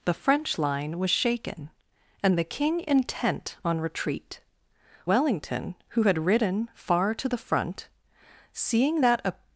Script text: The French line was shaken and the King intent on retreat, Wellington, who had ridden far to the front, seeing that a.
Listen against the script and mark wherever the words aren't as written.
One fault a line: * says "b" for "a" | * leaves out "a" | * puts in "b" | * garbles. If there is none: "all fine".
all fine